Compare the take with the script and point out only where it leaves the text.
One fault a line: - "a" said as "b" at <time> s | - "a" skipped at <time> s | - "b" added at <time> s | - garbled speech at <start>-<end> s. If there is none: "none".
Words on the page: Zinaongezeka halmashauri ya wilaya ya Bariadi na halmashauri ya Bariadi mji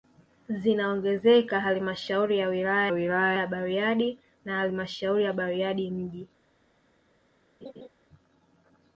- "wilaya" added at 2.9 s